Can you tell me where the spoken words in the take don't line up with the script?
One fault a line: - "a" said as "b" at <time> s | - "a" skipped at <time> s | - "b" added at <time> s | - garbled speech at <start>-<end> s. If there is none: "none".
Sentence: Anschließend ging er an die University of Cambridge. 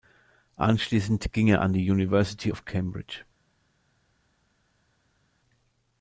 none